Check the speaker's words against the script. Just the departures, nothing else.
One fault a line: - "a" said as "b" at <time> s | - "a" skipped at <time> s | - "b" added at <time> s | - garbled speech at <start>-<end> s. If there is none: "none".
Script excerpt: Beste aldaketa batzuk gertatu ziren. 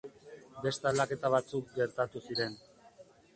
none